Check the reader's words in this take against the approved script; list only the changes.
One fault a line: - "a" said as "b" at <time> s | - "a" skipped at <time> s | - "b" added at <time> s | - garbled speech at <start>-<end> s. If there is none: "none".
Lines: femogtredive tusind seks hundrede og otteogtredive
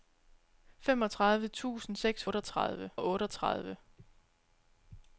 - "hundrede" said as "otteogtredive" at 2.2 s